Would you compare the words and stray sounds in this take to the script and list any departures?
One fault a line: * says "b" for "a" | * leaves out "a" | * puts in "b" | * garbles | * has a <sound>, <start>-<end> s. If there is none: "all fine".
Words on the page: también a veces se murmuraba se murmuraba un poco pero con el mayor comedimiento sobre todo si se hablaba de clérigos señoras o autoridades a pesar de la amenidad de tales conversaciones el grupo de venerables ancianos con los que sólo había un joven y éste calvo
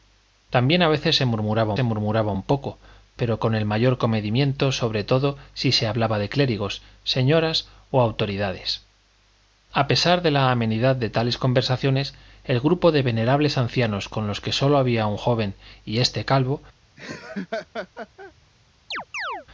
* has a laugh, 17.0-18.3 s
* has a chirp, 18.9-19.5 s